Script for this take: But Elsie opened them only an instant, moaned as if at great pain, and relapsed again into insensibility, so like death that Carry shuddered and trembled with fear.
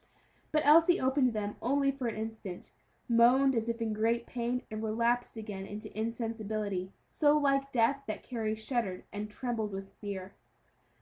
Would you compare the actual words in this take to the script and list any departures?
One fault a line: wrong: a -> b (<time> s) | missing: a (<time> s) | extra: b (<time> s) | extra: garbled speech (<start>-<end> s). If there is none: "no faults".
extra: for (1.9 s)
wrong: at -> in (3.8 s)